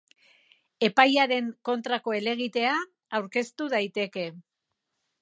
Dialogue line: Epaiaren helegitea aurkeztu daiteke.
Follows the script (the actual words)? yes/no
no